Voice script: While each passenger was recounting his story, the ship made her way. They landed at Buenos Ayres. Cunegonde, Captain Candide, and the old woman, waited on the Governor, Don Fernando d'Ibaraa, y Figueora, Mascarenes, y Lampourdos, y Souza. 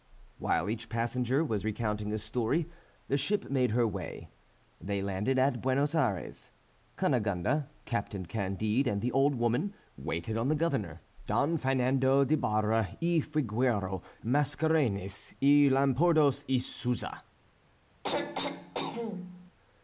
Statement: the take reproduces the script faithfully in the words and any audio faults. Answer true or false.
false